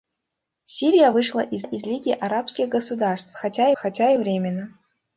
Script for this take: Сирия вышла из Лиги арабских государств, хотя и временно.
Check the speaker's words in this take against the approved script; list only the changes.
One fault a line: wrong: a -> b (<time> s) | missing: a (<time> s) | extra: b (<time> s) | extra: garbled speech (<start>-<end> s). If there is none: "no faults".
extra: из (1.6 s)
extra: хотя (3.7 s)